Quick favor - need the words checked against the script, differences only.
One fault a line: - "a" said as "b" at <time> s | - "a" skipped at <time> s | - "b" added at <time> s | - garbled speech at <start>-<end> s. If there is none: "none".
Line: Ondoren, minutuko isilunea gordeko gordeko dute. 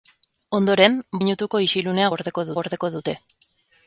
none